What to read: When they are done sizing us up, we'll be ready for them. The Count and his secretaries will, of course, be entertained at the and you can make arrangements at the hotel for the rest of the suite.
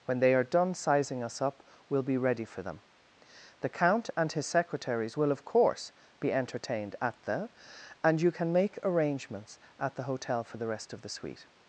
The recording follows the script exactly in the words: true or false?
true